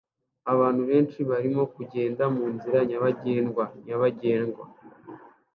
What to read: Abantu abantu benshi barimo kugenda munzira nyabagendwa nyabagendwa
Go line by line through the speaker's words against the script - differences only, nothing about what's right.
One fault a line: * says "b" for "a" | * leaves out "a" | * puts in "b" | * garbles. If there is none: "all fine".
* leaves out "abantu"